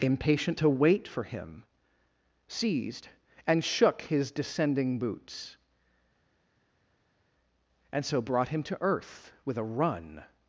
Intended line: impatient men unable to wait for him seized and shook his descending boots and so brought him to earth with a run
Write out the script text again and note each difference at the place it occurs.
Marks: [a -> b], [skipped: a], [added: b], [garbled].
impatient [skipped: men unable] to wait for him seized and shook his descending boots and so brought him to earth with a run